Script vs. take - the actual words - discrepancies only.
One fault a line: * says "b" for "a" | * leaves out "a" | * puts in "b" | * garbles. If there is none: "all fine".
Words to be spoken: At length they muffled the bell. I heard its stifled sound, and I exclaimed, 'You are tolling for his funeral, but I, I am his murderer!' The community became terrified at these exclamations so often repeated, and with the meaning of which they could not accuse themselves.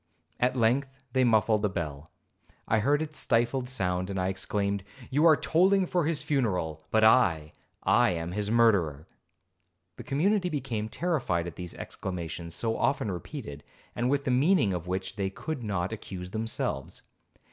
all fine